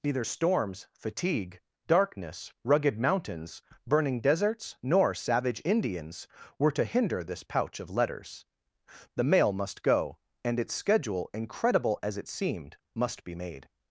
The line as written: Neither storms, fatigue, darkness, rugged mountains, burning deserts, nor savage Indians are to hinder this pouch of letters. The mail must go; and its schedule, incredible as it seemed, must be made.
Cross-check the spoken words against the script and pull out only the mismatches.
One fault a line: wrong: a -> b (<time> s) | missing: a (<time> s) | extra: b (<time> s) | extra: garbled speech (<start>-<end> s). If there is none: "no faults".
wrong: are -> were (6.6 s)